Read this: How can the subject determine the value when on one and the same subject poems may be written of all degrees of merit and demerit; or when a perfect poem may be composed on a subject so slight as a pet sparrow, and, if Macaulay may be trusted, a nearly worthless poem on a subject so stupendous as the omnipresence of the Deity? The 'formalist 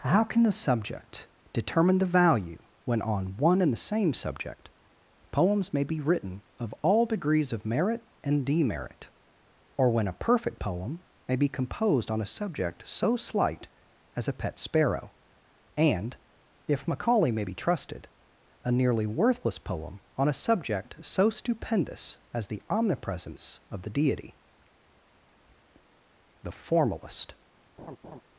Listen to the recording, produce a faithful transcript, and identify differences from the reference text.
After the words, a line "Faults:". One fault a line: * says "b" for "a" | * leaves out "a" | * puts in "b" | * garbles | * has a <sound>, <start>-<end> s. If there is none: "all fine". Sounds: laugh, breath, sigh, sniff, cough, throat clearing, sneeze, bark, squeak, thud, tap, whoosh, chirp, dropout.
How can the subject determine the value when on one and the same subject poems may be written of all degrees of merit and demerit; or when a perfect poem may be composed on a subject so slight as a pet sparrow, and, if Macaulay may be trusted, a nearly worthless poem on a subject so stupendous as the omnipresence of the Deity? The 'formalist
Faults:
* has a laugh, 27.8-28.2 s